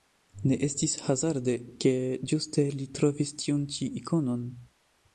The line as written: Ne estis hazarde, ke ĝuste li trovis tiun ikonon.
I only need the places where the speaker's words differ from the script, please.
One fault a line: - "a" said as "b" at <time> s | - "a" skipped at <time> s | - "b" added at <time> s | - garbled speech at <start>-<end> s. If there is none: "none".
- "ĉi" added at 3.8 s